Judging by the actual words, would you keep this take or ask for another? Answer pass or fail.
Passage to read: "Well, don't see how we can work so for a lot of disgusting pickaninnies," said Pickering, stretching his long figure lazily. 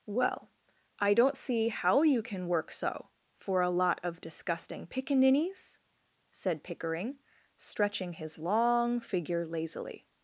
fail